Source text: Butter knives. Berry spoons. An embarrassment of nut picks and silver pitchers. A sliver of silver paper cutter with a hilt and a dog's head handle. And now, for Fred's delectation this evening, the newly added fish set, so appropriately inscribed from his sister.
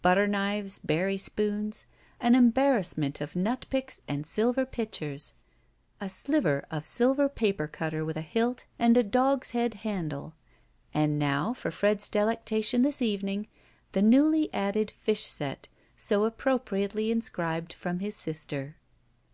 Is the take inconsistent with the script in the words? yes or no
no